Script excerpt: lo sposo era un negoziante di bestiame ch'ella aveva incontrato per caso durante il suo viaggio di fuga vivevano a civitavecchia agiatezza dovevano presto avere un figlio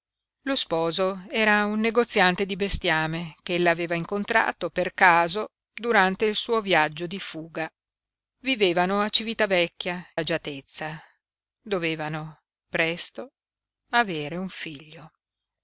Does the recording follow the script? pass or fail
pass